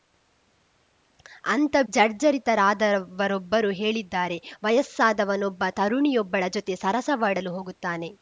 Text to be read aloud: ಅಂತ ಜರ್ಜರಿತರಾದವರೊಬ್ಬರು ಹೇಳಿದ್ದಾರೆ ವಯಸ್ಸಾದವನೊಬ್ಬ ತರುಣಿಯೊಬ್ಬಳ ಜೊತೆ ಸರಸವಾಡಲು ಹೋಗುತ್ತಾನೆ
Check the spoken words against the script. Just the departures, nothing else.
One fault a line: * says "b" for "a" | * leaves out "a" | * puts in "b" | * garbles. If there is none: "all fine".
all fine